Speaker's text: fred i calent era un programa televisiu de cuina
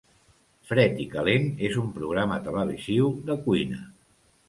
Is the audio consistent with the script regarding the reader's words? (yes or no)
no